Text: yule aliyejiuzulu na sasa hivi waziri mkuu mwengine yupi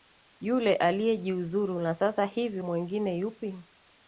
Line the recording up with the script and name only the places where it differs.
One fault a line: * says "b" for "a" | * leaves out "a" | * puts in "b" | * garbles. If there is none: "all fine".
* leaves out "waziri mkuu"